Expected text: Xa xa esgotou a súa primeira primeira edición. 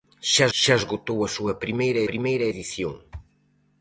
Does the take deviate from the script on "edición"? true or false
false